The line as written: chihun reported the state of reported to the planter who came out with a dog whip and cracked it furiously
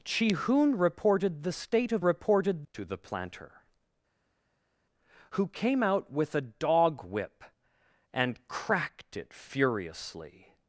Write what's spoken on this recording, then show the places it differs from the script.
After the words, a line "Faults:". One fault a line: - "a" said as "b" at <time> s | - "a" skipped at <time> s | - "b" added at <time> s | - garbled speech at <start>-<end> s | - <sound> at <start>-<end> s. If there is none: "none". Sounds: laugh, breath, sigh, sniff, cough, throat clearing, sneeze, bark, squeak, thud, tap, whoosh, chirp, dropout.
chihun reported the state of reported to the planter who came out with a dog whip and cracked it furiously
Faults:
none